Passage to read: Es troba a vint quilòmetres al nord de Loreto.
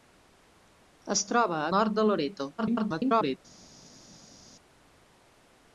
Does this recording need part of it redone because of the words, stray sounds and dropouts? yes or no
yes